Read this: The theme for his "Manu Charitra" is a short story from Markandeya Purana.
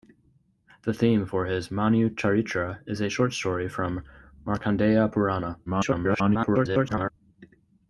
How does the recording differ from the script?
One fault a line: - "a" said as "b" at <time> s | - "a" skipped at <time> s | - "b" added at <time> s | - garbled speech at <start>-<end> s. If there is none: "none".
- garbled speech at 5.7-7.1 s